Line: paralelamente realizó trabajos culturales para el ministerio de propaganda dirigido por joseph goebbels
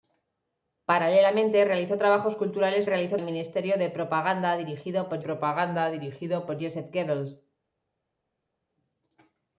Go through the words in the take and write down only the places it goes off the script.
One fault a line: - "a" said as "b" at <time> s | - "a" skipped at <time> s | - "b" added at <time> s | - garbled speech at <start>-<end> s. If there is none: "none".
- "para" said as "realizó" at 2.8 s
- "propaganda dirigido por" added at 5.2 s